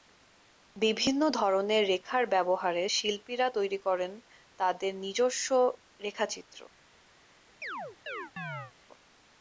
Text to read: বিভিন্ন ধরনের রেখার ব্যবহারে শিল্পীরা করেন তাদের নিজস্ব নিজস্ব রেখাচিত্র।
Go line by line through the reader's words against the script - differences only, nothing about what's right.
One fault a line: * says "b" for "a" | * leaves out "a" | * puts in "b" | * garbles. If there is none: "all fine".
* puts in "তৈরি"
* leaves out "নিজস্ব"